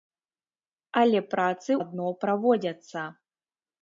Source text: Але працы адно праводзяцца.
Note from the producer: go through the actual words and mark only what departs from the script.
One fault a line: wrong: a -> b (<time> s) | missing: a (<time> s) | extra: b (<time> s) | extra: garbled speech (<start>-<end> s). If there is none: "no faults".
no faults